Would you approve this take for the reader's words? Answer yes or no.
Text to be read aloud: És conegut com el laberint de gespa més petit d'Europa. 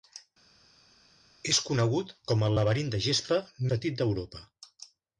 no